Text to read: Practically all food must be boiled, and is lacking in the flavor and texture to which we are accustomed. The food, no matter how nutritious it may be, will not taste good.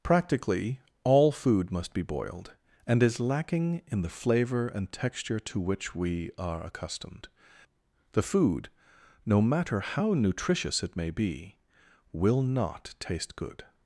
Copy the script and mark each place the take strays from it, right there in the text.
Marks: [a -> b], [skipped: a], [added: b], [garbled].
Practically all food must be boiled, and is lacking in the flavor and texture to which we are accustomed. The food, no matter how nutritious it may be, will not taste good.